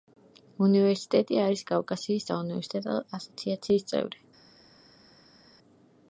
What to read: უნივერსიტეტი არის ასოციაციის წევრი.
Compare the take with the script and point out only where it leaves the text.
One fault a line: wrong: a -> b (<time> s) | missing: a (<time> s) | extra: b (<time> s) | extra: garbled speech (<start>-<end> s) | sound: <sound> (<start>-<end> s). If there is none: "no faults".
extra: კავკასიის საუნივერსიტეტო (1.7 s)